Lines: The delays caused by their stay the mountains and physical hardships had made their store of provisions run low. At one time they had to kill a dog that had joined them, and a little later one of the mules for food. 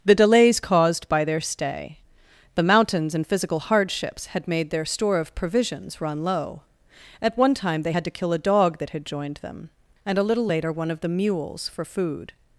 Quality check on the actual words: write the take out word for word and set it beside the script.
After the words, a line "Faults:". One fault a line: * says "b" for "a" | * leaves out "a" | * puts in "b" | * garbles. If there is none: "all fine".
The delays caused by their stay the mountains and physical hardships had made their store of provisions run low. At one time they had to kill a dog that had joined them, and a little later one of the mules for food.
Faults:
all fine